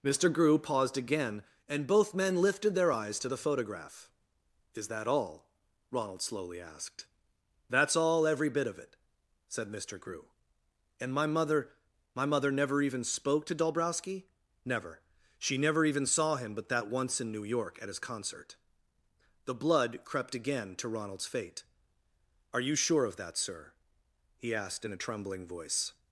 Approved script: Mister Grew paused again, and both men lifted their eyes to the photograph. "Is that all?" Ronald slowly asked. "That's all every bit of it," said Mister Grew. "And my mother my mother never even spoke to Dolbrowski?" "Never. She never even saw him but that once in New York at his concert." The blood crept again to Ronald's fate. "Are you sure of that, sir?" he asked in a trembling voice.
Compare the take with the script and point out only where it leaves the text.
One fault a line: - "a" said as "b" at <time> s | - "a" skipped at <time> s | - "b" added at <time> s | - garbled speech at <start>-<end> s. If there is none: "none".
none